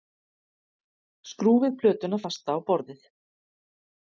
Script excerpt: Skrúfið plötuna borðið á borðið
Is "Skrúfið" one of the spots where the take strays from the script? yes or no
no